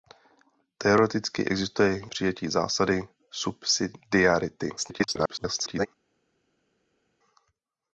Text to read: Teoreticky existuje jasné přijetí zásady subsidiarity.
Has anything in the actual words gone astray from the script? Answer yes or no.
yes